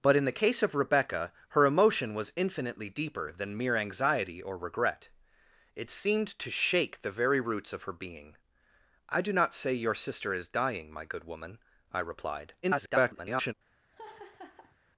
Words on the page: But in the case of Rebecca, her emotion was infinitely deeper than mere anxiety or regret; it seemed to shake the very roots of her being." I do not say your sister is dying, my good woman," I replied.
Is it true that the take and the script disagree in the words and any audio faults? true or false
true